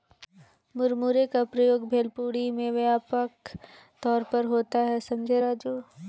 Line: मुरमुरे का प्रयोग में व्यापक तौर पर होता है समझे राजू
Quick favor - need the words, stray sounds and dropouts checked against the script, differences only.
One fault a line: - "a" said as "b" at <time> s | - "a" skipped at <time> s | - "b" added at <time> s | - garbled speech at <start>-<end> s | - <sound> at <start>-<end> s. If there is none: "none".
- "भेलपुरी" added at 1.9 s